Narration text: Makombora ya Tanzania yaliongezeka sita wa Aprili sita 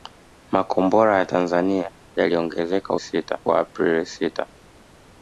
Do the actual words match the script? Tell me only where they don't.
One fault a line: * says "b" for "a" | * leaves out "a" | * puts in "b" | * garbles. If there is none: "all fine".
all fine